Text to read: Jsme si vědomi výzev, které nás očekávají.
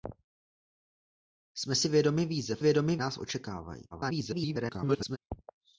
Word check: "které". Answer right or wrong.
wrong